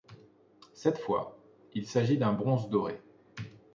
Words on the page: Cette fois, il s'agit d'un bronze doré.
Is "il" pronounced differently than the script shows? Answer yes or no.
no